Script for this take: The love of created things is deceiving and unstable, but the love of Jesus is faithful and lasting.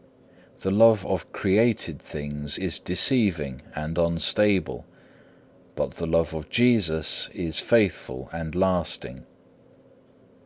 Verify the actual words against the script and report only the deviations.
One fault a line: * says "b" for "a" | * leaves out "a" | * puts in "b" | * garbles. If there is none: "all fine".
all fine